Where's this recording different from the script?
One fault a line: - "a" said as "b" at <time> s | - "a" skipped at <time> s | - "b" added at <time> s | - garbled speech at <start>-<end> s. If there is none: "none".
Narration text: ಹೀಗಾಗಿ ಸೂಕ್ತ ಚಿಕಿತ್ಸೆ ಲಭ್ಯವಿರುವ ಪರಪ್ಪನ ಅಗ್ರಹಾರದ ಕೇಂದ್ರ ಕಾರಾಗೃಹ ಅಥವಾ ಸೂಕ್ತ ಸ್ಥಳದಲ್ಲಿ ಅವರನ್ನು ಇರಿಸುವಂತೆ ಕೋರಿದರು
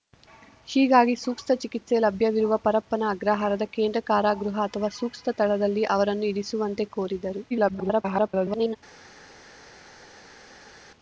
- garbled speech at 7.5-8.8 s